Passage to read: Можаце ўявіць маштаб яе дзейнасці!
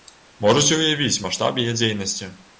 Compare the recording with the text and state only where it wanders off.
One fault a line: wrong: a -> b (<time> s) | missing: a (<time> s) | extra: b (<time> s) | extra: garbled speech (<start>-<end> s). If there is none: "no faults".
no faults